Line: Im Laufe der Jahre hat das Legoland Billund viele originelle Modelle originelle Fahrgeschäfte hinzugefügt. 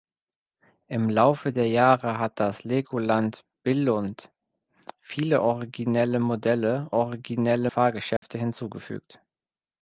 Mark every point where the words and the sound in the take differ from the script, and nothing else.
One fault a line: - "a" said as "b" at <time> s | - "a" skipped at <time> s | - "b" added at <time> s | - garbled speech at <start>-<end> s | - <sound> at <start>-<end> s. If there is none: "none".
- dropout at 8.2-8.2 s